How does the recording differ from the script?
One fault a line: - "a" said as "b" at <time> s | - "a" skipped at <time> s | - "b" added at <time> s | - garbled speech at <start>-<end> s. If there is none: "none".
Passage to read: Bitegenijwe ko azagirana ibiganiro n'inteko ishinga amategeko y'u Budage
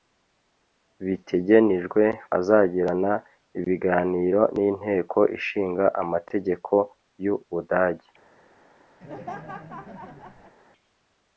- "ko" skipped at 2.0 s